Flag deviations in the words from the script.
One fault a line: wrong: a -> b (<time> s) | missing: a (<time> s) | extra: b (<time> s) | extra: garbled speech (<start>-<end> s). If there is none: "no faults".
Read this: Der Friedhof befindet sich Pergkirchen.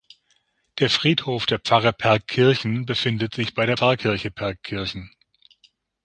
extra: der Pfarre Pergkirchen (1.4 s)
extra: bei der Pfarrkirche (3.5 s)